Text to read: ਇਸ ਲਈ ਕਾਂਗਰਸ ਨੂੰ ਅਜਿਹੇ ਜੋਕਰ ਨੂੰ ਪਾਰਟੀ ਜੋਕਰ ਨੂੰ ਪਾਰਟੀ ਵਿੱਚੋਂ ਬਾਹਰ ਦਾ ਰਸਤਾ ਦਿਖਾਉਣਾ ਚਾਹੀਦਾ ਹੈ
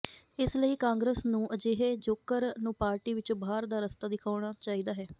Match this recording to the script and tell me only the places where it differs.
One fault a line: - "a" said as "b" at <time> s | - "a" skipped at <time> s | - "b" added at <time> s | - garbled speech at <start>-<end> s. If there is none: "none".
- "ਜੋਕਰ ਨੂੰ ਪਾਰਟੀ" skipped at 3.1 s